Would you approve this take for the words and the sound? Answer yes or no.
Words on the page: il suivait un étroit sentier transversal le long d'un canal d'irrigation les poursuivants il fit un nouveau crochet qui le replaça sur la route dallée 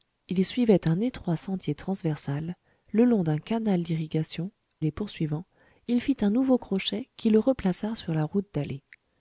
yes